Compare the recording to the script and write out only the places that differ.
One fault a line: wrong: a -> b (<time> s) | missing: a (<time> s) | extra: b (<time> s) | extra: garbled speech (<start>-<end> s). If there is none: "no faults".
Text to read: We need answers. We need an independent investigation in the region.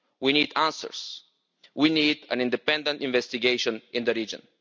no faults